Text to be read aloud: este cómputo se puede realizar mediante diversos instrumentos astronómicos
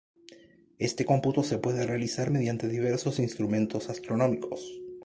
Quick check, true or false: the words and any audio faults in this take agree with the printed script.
true